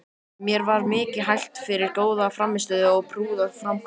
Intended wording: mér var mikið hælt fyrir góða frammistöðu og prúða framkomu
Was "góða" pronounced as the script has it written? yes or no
yes